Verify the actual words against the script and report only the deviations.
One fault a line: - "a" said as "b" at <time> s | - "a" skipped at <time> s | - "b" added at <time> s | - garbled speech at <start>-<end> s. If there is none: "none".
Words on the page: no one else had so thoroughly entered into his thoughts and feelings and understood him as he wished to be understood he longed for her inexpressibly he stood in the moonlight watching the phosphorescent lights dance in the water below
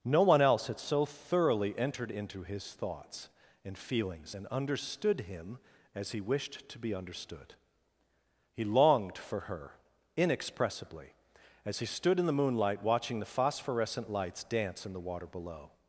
- "as" added at 11.6 s